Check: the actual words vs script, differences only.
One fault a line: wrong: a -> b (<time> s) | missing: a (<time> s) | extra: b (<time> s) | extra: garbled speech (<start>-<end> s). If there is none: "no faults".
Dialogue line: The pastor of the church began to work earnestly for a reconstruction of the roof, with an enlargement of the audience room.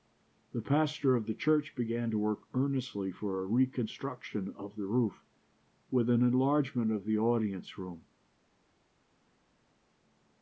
no faults